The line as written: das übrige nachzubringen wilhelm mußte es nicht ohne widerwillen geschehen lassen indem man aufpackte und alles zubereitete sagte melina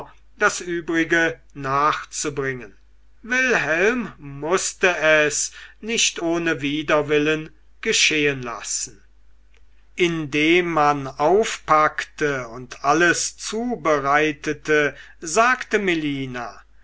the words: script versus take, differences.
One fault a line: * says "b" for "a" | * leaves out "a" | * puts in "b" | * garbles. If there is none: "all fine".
all fine